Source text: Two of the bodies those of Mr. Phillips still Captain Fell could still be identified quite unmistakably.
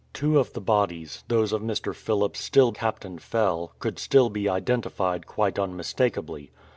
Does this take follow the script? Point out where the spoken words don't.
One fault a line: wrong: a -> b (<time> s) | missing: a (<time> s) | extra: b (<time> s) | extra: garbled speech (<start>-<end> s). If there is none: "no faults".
no faults